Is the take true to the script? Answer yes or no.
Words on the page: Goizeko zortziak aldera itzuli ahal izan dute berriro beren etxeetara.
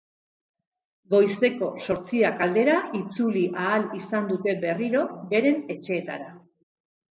yes